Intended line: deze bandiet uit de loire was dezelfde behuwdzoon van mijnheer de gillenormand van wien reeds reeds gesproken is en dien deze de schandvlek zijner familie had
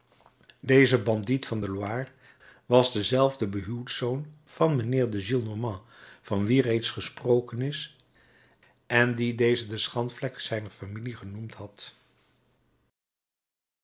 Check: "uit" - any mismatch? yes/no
yes